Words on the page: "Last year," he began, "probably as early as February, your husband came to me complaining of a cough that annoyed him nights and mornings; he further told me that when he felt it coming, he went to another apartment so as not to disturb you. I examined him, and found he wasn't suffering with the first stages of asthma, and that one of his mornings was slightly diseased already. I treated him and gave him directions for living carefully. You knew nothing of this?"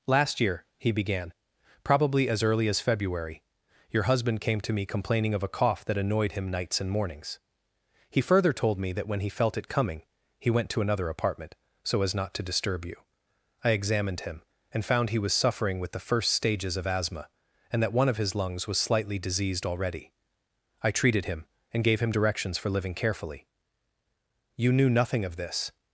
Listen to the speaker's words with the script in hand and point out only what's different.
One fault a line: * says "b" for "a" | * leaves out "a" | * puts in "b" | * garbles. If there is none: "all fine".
* says "was" for "wasn't"
* says "lungs" for "mornings"